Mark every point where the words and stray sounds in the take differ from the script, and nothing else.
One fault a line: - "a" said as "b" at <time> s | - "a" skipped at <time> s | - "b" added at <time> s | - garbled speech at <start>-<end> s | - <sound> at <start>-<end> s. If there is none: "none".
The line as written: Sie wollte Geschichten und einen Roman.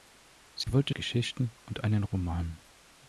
- dropout at 0.6-0.7 s